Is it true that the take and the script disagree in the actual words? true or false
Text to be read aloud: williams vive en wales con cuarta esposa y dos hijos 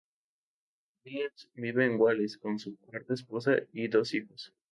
true